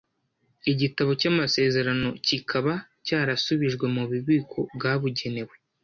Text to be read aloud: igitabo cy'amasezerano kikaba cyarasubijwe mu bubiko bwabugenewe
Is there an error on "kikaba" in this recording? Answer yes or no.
no